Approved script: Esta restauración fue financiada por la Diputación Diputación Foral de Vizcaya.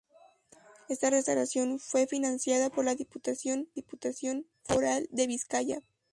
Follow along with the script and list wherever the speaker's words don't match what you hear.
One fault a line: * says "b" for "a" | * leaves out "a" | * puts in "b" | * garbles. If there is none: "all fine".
all fine